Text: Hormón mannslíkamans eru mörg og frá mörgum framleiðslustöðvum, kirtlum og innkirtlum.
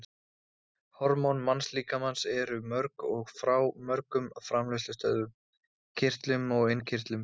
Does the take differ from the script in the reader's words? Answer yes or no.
no